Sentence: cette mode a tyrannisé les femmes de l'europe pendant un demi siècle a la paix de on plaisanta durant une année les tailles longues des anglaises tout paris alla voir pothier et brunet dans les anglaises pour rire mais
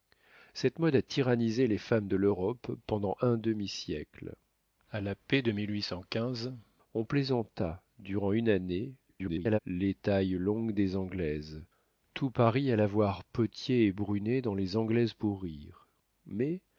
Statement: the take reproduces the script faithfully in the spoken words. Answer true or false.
false